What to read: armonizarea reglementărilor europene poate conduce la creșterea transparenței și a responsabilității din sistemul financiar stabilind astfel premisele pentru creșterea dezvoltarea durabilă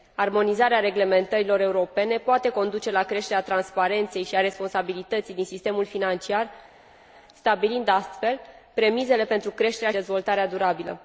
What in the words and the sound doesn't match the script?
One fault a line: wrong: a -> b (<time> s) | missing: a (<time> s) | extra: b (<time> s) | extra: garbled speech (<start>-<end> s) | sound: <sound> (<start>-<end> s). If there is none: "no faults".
no faults